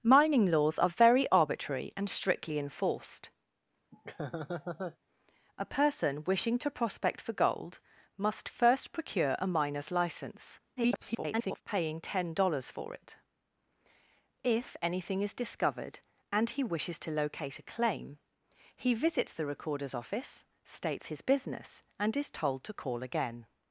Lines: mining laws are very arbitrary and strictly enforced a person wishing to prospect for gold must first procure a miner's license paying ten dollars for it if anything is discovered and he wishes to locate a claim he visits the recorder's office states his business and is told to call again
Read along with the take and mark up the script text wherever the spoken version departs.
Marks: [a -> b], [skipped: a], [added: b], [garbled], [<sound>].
mining laws are very arbitrary and strictly enforced [laugh] a person wishing to prospect for gold must first procure a miner's license [garbled] paying ten dollars for it if anything is discovered and he wishes to locate a claim he visits the recorder's office states his business and is told to call again